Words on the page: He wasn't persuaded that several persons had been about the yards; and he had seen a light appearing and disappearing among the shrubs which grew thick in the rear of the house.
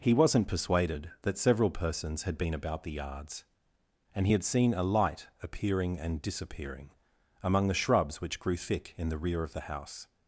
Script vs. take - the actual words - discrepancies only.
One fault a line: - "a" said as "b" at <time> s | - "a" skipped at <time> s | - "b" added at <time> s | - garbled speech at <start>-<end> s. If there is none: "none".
none